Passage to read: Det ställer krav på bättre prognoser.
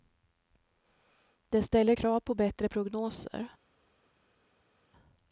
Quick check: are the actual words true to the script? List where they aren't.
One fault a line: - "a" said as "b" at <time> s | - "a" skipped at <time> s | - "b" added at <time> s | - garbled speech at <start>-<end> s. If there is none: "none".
none